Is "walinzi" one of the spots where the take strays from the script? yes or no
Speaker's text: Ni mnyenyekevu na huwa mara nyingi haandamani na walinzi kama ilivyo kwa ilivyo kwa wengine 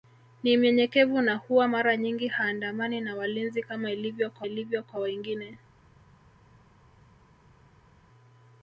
no